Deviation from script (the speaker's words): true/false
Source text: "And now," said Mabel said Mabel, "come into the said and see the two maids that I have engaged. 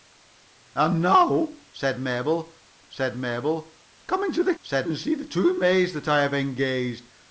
false